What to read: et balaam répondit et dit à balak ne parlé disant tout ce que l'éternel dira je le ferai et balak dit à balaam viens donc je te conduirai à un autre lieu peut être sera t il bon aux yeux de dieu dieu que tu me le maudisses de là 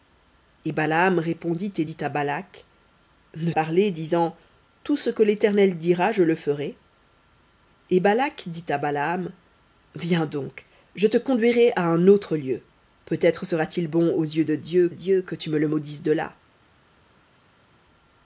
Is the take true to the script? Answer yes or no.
yes